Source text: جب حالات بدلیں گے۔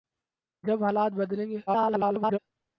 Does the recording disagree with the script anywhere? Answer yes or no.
yes